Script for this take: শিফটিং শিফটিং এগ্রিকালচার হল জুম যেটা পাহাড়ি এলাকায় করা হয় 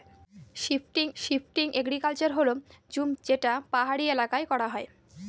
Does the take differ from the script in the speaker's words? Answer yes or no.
no